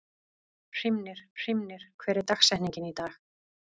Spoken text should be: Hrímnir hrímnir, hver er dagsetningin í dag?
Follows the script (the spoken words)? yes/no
yes